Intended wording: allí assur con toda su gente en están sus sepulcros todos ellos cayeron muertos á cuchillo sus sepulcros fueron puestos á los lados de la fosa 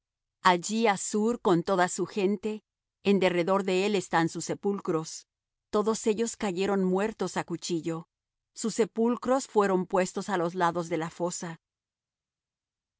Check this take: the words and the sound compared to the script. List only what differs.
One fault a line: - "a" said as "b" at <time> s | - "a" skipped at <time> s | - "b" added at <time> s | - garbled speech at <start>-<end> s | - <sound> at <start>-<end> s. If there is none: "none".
- "derredor de él" added at 3.2 s